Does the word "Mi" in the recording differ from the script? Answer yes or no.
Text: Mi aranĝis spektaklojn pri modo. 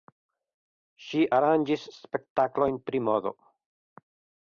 yes